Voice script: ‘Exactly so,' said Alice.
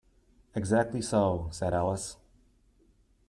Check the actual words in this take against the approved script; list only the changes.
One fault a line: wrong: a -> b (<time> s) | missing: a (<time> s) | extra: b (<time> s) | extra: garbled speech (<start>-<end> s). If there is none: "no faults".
no faults